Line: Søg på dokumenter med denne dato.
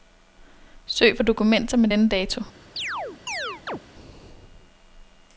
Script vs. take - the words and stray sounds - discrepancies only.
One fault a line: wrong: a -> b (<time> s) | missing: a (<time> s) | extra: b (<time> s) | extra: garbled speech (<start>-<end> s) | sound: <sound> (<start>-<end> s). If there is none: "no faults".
sound: chirp (2.8-3.8 s)